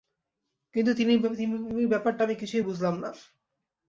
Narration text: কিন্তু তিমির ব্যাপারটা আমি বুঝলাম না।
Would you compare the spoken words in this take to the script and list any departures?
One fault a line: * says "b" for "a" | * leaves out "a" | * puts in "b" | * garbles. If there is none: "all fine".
* puts in "কিছুই"